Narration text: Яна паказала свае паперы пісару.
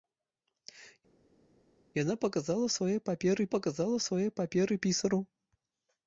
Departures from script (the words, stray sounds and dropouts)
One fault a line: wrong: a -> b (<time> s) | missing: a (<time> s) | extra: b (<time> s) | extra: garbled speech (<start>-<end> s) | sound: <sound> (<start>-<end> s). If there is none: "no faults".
extra: паказала свае паперы (3.5 s)